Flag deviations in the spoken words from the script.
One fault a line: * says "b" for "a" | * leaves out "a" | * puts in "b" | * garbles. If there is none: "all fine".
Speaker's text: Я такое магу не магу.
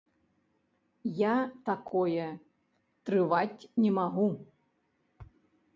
* says "трываць" for "магу"